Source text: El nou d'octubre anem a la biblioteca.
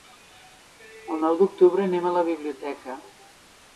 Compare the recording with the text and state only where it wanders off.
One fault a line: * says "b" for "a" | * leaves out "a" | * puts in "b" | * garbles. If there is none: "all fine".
all fine